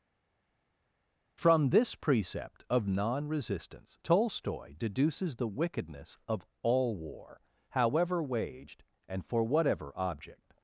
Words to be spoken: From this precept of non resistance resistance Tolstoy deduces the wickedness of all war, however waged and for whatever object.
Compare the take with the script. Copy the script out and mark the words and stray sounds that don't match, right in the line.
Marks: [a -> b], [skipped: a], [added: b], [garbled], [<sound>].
From this precept of non resistance [skipped: resistance] Tolstoy deduces the wickedness of all war, however waged and for whatever object.